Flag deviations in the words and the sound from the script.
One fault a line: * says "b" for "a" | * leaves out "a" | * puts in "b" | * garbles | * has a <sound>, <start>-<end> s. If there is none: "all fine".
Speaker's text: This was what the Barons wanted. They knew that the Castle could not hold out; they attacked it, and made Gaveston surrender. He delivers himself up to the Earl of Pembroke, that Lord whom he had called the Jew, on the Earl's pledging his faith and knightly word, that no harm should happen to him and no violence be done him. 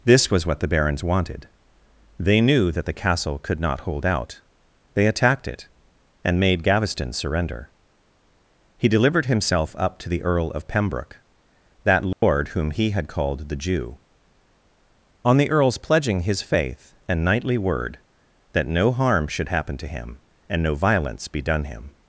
* says "delivered" for "delivers"
* has a dropout, 12.1-12.2 s